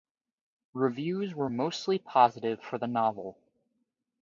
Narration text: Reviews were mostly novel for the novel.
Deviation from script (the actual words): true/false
true